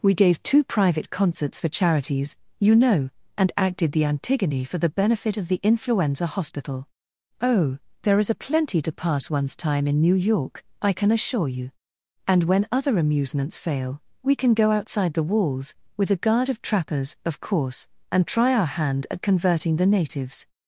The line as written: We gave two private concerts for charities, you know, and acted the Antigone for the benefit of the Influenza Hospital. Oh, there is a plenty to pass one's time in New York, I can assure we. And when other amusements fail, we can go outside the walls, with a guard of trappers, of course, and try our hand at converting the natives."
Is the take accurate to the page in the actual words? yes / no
no